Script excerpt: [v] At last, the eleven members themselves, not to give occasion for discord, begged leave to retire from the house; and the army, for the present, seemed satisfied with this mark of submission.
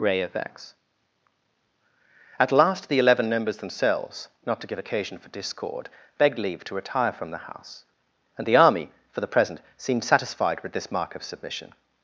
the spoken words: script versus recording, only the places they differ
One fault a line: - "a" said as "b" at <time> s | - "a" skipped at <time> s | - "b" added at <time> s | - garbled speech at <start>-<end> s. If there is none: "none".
- "v" said as "ray of x" at 0.0 s